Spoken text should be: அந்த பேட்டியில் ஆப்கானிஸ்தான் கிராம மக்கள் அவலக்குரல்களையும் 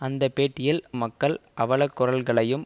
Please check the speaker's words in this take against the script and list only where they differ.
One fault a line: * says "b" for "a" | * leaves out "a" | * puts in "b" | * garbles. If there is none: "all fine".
* leaves out "ஆப்கானிஸ்தான் கிராம"